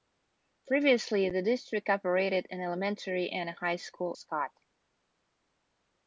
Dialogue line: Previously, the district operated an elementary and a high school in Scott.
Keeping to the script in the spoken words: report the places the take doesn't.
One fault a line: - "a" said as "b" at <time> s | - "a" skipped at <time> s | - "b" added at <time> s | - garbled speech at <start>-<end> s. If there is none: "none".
- "in" skipped at 4.2 s